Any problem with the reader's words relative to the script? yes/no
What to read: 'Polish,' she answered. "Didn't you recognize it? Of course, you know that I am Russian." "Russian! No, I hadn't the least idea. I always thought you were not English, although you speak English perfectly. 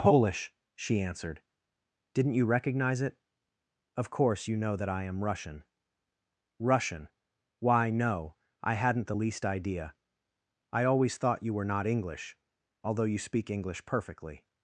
yes